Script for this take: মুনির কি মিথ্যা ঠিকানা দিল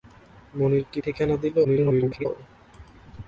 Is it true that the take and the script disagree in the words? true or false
true